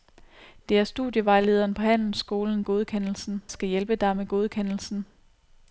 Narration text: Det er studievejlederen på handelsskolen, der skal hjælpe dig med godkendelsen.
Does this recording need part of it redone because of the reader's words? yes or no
yes